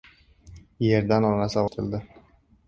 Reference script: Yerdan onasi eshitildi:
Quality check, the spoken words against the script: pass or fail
pass